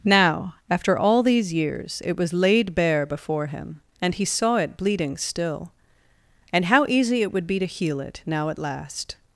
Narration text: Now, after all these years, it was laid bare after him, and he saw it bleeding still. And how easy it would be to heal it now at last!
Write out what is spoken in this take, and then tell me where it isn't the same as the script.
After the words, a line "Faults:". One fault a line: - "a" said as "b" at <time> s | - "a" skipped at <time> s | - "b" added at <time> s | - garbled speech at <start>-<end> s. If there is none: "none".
Now, after all these years, it was laid bare before him, and he saw it bleeding still. And how easy it would be to heal it now at last!
Faults:
- "after" said as "before" at 3.0 s